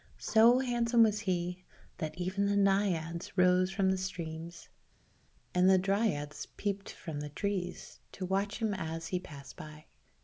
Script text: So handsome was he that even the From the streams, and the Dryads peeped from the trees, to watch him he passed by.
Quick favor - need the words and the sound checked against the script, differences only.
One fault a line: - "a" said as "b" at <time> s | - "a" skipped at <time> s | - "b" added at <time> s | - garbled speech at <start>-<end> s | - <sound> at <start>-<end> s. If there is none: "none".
- "Naiads rose" added at 2.6 s
- "as" added at 8.8 s